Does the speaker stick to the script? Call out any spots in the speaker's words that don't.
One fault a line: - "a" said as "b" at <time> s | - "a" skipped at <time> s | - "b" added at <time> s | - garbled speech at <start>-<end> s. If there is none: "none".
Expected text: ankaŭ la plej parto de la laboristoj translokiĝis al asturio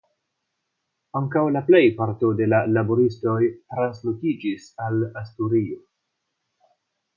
none